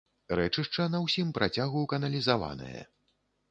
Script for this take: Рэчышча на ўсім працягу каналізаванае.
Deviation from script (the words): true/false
false